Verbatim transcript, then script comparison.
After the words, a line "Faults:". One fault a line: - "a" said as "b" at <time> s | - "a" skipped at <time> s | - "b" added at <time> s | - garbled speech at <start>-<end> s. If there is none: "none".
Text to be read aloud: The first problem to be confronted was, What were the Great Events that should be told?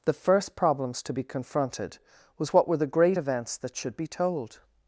The first problems to be confronted was, What were the Great Events that should be told?
Faults:
- "problem" said as "problems" at 0.6 s